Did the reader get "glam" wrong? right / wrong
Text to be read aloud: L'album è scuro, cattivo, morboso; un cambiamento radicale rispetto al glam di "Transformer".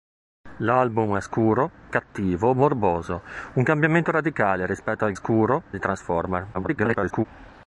wrong